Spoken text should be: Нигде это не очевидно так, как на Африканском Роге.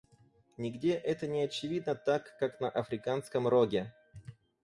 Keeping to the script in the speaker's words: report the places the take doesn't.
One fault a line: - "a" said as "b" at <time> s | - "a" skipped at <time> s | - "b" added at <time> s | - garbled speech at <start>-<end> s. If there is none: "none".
none